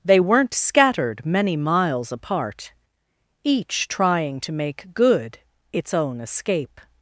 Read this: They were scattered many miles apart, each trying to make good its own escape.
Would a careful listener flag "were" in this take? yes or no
yes